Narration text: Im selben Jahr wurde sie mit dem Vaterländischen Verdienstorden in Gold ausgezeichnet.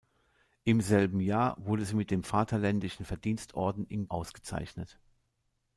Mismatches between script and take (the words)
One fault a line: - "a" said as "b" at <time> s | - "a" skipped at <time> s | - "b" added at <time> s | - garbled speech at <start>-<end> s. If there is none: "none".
- "Gold" skipped at 4.1 s